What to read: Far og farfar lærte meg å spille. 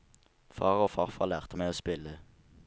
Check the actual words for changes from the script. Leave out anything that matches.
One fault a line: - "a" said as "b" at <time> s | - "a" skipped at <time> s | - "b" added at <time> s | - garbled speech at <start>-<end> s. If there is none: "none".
none